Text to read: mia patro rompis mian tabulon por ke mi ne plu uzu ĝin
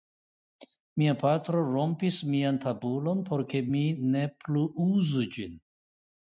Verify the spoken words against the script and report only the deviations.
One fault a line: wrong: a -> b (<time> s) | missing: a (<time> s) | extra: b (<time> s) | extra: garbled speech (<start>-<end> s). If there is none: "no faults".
no faults